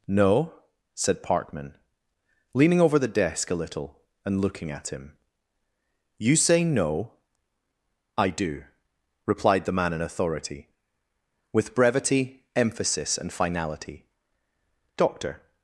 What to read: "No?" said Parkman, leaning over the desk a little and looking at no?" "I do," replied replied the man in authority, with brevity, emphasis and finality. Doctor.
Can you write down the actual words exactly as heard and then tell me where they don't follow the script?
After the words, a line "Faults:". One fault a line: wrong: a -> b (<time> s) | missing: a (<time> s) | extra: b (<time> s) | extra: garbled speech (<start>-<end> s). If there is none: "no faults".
"No?" said Parkman, leaning over the desk a little and looking at him. "You say no?" "I do," replied the man in authority, with brevity, emphasis and finality. Doctor.
Faults:
extra: him You say (4.9 s)
missing: replied (9.7 s)